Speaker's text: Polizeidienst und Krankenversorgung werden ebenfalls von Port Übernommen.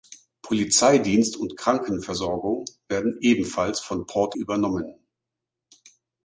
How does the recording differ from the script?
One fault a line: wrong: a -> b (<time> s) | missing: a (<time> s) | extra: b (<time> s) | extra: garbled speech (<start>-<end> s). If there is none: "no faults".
no faults